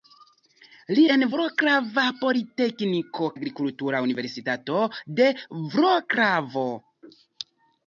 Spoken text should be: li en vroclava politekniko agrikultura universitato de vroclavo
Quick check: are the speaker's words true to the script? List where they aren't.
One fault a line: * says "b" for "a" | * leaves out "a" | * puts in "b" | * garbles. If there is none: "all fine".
all fine